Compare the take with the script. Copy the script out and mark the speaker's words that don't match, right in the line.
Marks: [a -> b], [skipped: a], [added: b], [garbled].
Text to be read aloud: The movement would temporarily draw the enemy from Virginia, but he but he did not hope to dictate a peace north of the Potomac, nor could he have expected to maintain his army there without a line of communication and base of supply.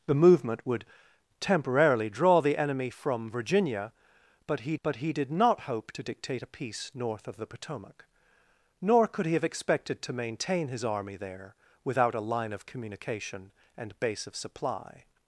The movement would temporarily draw the enemy from Virginia, but he but he did not hope to dictate a peace north of the Potomac, nor could he have expected to maintain his army there without a line of communication and base of supply.